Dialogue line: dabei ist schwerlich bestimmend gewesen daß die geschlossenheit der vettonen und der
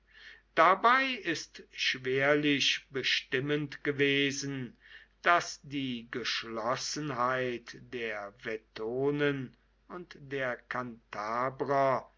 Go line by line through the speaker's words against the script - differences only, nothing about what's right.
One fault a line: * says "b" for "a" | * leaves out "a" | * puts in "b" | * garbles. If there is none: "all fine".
all fine